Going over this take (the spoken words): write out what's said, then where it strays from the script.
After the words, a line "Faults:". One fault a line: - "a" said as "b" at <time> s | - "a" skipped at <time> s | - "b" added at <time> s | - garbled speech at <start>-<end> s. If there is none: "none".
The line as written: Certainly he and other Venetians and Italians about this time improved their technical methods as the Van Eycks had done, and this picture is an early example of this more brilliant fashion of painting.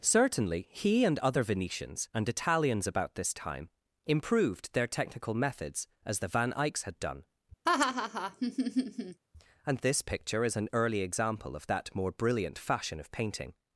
Certainly he and other Venetians and Italians about this time improved their technical methods as the Van Eycks had done, and this picture is an early example of that more brilliant fashion of painting.
Faults:
- "this" said as "that" at 11.7 s